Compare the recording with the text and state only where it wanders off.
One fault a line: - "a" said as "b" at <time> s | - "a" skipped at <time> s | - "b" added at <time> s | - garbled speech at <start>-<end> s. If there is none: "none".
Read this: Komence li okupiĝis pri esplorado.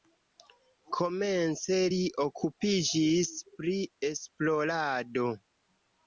none